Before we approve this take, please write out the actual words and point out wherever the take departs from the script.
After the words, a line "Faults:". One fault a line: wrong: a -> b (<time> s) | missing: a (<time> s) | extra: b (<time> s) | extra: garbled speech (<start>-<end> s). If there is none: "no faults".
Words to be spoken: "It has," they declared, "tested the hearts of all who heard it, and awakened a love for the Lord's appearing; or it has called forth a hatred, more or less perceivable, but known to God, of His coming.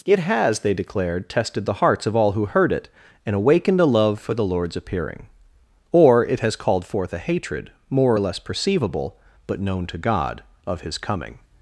"It has," they declared, "tested the hearts of all who heard it, and awakened a love for the Lord's appearing; or it has called forth a hatred, more or less perceivable, but known to God, of His coming.
Faults:
no faults